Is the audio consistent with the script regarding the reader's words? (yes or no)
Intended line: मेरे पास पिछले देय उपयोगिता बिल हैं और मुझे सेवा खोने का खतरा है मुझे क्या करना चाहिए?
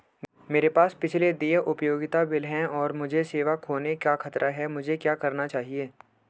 yes